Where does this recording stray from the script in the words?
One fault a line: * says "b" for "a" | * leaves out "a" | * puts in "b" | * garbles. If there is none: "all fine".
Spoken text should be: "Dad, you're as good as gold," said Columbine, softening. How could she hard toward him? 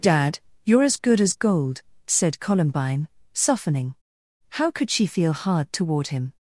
* puts in "feel"